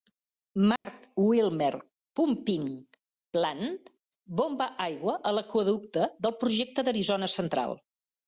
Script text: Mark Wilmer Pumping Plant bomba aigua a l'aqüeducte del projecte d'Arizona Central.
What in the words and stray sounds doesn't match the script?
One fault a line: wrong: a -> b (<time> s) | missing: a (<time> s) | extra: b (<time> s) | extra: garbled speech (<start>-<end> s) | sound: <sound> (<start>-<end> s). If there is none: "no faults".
sound: dropout (0.8-0.9 s)